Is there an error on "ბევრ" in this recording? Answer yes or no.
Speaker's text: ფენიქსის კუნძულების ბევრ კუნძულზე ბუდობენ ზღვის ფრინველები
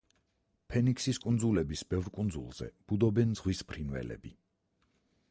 no